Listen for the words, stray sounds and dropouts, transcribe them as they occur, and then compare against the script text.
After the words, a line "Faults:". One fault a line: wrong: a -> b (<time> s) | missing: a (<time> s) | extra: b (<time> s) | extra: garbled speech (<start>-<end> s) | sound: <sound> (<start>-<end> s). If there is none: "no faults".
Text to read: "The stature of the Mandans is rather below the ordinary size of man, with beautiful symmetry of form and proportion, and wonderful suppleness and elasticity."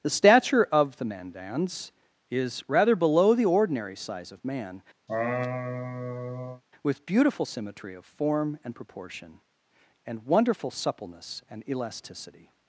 "The stature of the Mandans is rather below the ordinary size of man, with beautiful symmetry of form and proportion, and wonderful suppleness and elasticity."
Faults:
sound: laugh (5.1-6.6 s)